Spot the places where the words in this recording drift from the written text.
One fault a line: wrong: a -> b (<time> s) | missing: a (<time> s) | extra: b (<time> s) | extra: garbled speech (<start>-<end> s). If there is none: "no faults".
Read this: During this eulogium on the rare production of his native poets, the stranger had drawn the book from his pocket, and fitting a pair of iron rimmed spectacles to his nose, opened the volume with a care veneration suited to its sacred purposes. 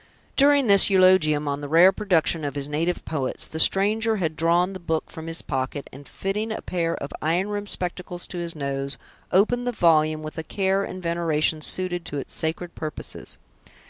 extra: and (10.8 s)